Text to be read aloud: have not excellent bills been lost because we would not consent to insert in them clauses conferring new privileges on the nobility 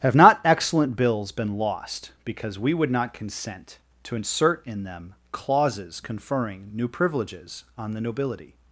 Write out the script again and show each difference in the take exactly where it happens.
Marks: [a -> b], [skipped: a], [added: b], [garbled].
have not excellent bills been lost because we would not consent to insert in them clauses conferring new privileges on the nobility